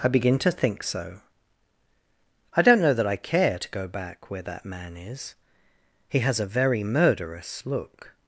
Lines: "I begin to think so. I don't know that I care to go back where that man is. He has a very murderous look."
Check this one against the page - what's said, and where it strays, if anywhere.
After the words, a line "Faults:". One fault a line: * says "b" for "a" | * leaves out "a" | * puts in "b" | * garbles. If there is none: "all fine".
"I begin to think so. I don't know that I care to go back where that man is. He has a very murderous look."
Faults:
all fine